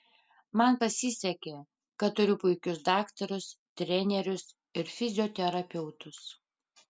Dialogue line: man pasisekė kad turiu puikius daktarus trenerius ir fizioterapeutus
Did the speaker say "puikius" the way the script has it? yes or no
yes